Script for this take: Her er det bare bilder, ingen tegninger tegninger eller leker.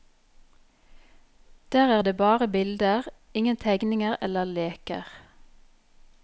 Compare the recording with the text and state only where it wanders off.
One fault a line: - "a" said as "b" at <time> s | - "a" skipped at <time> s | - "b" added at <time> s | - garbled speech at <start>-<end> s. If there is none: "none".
- "Her" said as "Der" at 1.7 s
- "tegninger" skipped at 4.2 s